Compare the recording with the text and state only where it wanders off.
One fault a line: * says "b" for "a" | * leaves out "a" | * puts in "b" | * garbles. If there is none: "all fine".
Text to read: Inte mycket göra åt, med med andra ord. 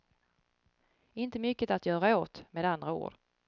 * puts in "att"
* leaves out "med"